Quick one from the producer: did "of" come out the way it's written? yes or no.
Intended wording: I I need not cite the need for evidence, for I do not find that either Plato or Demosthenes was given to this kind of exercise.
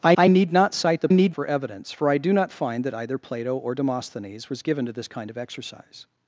yes